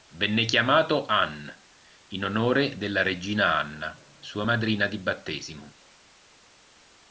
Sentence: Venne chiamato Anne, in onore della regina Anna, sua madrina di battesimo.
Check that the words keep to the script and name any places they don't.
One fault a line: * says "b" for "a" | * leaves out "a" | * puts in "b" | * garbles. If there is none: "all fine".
all fine